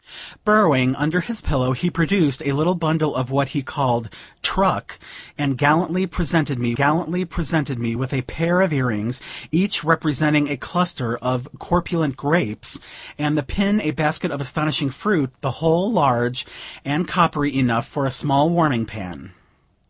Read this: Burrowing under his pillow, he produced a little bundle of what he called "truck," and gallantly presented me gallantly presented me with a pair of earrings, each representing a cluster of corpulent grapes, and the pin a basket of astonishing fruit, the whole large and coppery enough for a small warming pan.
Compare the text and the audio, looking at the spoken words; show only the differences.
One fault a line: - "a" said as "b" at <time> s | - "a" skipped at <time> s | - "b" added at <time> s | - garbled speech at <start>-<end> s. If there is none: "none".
none